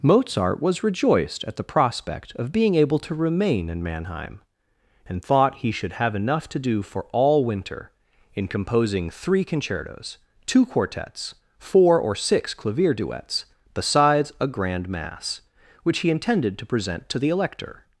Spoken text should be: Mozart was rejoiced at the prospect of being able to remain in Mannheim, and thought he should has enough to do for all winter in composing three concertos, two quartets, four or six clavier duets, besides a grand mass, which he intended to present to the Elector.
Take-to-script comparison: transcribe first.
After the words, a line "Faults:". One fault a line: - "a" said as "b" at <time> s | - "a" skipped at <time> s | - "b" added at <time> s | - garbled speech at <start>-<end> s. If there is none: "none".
Mozart was rejoiced at the prospect of being able to remain in Mannheim, and thought he should have enough to do for all winter in composing three concertos, two quartets, four or six clavier duets, besides a grand mass, which he intended to present to the Elector.
Faults:
- "has" said as "have" at 5.9 s